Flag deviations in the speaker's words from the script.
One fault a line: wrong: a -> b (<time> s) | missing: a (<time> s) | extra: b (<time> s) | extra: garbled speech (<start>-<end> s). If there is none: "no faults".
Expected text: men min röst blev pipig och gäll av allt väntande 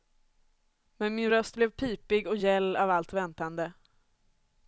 no faults